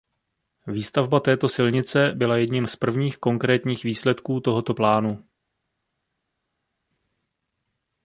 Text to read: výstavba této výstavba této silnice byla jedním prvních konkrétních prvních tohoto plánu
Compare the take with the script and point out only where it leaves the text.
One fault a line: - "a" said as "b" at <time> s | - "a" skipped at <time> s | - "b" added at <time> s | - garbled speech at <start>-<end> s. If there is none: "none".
- "výstavba této" skipped at 1.5 s
- "z" added at 2.7 s
- "prvních" said as "výsledků" at 3.8 s